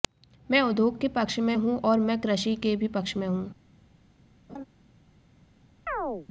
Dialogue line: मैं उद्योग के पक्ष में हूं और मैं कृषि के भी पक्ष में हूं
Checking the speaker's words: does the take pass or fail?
pass